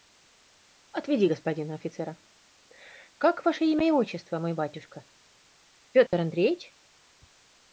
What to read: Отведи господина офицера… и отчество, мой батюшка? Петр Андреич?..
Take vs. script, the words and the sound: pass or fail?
fail